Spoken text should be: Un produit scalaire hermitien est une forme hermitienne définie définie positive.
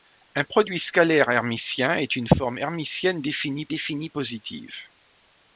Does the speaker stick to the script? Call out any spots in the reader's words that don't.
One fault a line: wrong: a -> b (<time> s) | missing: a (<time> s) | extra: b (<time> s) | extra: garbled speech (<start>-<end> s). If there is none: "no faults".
no faults